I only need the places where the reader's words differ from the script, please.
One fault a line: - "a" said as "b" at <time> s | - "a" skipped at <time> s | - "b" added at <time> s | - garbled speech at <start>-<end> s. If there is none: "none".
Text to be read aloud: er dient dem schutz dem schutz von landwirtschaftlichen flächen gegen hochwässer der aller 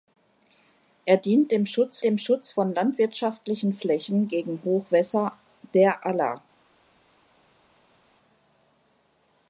none